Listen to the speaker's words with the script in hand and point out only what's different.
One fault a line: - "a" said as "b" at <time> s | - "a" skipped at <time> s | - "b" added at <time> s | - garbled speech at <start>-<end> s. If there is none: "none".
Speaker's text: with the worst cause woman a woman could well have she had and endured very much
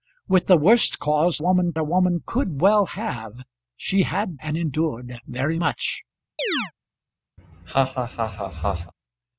none